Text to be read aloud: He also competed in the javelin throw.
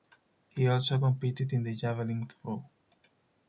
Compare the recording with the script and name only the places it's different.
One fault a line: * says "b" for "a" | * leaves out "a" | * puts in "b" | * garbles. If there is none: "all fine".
all fine